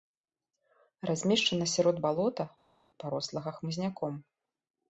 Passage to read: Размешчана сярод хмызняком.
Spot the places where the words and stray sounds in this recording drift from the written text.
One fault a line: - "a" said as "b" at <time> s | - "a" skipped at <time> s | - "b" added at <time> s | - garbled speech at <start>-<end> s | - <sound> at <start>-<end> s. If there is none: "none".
- "балота парослага" added at 2.0 s